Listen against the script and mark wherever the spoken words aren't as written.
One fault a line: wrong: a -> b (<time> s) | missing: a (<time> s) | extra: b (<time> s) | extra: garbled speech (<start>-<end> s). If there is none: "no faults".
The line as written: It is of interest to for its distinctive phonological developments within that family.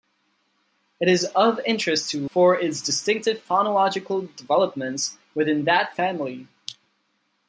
no faults